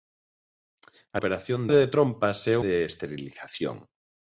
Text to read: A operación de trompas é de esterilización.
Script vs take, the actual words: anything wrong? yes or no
no